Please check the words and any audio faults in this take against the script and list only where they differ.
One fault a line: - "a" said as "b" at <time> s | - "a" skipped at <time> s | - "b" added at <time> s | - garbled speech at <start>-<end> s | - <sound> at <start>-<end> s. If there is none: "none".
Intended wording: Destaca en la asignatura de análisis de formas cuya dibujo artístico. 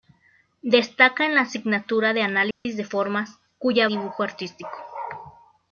- dropout at 2.5-2.7 s